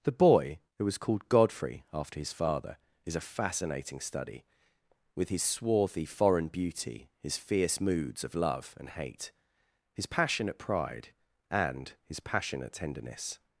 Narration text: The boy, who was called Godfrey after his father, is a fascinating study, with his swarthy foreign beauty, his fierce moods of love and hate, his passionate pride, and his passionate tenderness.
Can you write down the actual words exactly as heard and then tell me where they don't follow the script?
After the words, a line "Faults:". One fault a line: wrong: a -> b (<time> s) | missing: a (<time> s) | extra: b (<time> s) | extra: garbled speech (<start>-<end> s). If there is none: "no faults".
The boy, who was called Godfrey after his father, is a fascinating study, with his swarthy foreign beauty, his fierce moods of love and hate, his passionate pride, and his passionate tenderness.
Faults:
no faults